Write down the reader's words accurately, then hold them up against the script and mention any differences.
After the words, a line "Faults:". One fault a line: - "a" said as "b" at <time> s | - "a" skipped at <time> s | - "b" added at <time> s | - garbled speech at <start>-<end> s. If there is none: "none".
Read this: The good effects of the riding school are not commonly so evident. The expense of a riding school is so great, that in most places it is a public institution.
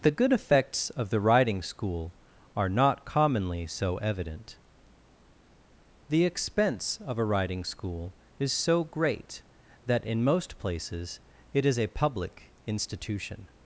The good effects of the riding school are not commonly so evident. The expense of a riding school is so great, that in most places it is a public institution.
Faults:
none